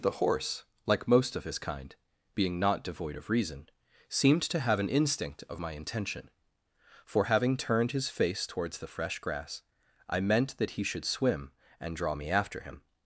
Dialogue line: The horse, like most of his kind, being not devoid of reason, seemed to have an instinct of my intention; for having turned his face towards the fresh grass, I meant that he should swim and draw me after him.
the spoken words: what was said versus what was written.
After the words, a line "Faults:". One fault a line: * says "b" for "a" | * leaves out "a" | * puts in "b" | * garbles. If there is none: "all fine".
The horse, like most of his kind, being not devoid of reason, seemed to have an instinct of my intention; for having turned his face towards the fresh grass, I meant that he should swim and draw me after him.
Faults:
all fine